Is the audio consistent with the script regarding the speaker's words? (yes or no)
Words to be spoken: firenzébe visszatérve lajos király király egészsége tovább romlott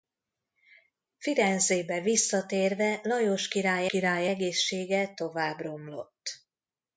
yes